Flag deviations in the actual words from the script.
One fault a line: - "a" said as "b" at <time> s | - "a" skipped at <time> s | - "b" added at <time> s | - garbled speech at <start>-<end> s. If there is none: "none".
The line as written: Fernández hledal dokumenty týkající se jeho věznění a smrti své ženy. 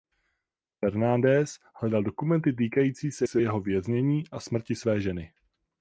- "se" added at 3.2 s